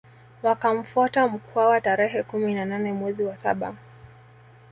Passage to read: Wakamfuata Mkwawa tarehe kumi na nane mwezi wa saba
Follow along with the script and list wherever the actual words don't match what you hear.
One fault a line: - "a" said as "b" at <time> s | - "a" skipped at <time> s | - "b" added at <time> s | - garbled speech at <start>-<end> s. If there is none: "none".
none